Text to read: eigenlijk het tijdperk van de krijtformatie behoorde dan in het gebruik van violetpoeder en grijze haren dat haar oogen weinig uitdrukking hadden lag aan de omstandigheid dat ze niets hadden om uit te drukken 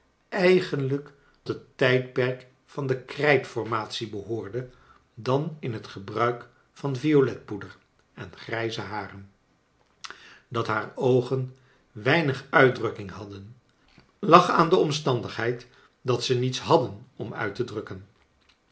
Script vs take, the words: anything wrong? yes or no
no